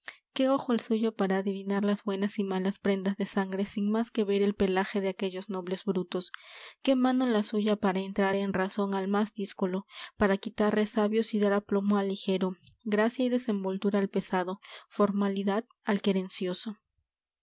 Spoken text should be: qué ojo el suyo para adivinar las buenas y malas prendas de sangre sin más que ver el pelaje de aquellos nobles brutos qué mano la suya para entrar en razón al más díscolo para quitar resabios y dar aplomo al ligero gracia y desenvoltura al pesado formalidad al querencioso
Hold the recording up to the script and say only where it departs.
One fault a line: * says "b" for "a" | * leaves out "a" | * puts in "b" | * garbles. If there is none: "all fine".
all fine